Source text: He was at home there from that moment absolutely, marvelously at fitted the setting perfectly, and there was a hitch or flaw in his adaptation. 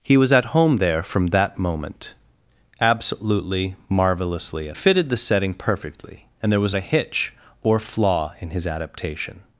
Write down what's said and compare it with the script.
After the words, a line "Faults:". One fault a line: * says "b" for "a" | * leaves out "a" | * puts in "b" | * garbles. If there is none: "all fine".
He was at home there from that moment absolutely, marvelously at fitted the setting perfectly, and there was a hitch or flaw in his adaptation.
Faults:
all fine